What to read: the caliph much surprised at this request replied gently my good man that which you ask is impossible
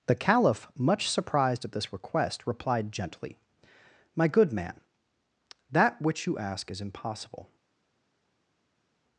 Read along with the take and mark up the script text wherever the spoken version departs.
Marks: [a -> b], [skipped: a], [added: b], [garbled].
the caliph much surprised at this request replied gently my good man that which you ask is impossible